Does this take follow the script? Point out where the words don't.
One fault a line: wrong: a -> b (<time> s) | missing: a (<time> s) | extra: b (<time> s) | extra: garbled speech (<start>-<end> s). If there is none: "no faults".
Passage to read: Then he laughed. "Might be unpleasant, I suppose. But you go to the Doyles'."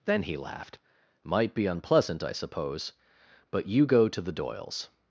no faults